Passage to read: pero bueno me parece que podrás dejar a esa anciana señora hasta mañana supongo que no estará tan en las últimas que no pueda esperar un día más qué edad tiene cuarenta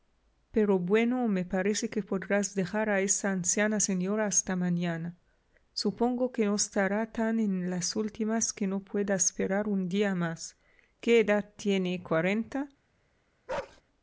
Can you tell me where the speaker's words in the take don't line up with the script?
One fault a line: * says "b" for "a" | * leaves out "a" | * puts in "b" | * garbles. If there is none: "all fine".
all fine